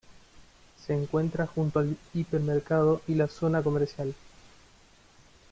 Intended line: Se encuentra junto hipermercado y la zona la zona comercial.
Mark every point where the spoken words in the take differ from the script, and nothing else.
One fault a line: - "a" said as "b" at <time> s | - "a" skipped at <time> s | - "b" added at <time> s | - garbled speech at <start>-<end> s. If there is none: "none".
- "al" added at 1.8 s
- "la zona" skipped at 3.6 s